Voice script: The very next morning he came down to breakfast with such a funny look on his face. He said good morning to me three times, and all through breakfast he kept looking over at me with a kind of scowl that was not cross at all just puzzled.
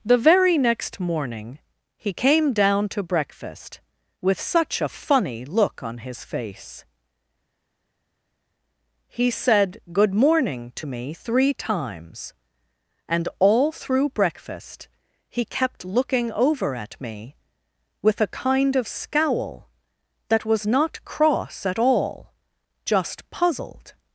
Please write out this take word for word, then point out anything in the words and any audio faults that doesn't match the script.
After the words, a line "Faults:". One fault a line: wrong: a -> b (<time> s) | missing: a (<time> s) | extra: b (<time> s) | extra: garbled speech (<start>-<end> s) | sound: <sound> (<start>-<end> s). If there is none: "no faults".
The very next morning he came down to breakfast with such a funny look on his face. He said good morning to me three times, and all through breakfast he kept looking over at me with a kind of scowl that was not cross at all just puzzled.
Faults:
no faults